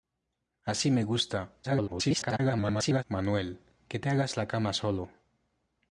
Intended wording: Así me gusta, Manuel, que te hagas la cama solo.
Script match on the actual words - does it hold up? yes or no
no